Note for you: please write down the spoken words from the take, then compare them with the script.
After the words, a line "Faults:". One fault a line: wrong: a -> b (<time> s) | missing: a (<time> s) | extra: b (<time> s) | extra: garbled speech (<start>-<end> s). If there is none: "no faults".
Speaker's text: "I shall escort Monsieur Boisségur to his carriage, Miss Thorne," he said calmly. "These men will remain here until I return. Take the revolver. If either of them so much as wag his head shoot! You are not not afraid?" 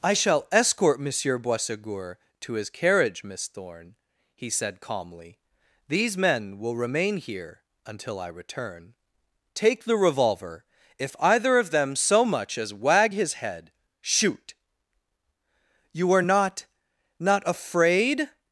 "I shall escort Monsieur Boisségur to his carriage, Miss Thorne," he said calmly. "These men will remain here until I return. Take the revolver. If either of them so much as wag his head shoot! You are not not afraid?"
Faults:
no faults